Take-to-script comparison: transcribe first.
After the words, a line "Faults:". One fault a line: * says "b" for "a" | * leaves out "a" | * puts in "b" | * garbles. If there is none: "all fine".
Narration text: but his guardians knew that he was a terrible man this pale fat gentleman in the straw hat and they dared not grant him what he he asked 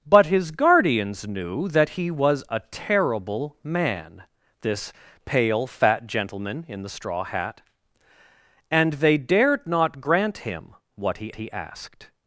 but his guardians knew that he was a terrible man this pale fat gentleman in the straw hat and they dared not grant him what he he asked
Faults:
all fine